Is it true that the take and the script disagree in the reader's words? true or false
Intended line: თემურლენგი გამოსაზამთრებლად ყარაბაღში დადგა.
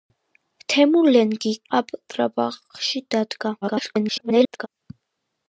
true